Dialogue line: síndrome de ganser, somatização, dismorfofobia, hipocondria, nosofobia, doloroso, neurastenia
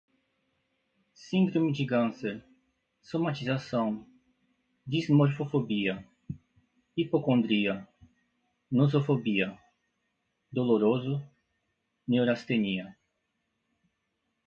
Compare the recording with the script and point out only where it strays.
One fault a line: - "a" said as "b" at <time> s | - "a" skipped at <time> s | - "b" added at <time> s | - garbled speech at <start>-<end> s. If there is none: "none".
none